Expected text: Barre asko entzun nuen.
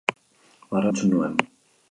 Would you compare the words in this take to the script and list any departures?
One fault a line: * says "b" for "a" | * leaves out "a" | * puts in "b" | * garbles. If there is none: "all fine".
* leaves out "asko"